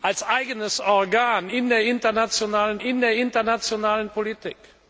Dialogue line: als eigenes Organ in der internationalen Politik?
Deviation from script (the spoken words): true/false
true